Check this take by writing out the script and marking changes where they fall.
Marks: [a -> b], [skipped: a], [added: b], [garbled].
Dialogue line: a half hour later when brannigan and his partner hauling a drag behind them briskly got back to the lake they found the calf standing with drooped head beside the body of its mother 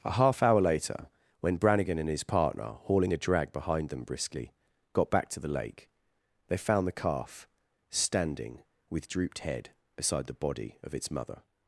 a half hour later when brannigan and his partner hauling a drag behind them briskly got back to the lake they found the calf standing with drooped head beside the body of its mother